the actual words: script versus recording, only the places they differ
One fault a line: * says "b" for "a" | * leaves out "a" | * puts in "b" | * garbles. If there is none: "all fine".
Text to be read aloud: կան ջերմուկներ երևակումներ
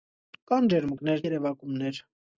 all fine